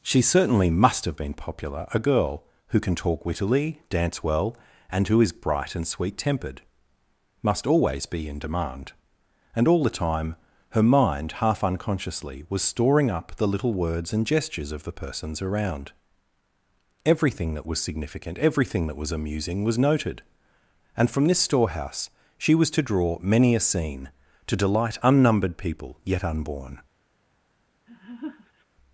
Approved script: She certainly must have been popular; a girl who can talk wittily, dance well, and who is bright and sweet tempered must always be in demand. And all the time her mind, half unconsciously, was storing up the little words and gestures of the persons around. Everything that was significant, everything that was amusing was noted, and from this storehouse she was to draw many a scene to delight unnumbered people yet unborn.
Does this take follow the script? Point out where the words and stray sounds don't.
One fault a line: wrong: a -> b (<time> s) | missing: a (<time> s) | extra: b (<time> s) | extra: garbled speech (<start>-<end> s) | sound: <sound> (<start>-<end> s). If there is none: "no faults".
sound: laugh (27.9-28.7 s)